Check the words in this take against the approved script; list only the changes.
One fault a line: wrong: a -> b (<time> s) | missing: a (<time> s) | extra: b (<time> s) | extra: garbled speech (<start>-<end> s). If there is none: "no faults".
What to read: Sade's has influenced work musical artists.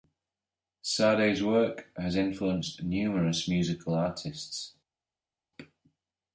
extra: work (1.4 s)
wrong: work -> numerous (2.8 s)